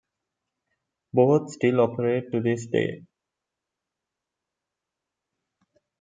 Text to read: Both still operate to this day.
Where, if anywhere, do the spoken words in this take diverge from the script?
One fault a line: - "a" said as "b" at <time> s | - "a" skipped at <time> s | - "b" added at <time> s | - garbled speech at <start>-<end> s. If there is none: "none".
none